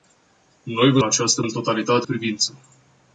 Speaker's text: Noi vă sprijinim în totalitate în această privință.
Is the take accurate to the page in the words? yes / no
no